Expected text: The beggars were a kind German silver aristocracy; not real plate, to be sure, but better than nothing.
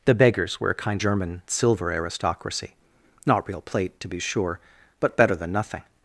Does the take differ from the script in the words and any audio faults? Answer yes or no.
no